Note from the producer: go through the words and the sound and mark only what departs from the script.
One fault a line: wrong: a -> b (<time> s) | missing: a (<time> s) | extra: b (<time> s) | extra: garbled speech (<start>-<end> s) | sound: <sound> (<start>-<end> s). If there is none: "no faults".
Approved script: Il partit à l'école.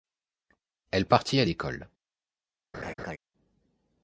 wrong: Il -> Elle (0.9 s)
sound: laugh (2.7-3.2 s)